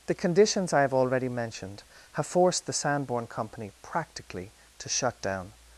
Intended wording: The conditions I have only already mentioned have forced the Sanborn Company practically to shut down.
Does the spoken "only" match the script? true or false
false